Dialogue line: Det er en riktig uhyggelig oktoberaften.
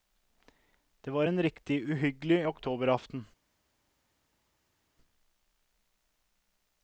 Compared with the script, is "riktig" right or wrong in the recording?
right